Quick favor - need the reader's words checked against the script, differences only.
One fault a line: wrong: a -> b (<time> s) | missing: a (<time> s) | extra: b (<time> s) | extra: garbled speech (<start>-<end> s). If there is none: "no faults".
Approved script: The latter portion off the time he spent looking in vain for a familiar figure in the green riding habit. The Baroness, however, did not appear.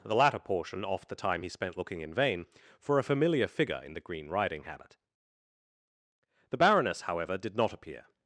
no faults